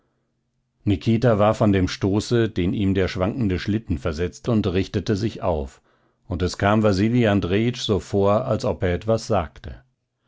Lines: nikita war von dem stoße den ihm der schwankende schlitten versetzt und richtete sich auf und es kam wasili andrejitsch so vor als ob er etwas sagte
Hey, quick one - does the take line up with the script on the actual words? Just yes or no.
yes